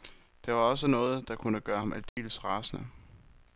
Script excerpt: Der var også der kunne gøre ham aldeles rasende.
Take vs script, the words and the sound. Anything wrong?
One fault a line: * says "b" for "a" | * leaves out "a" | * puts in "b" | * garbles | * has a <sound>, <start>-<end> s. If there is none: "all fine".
* puts in "noget"
* has a dropout, 2.1-2.2 s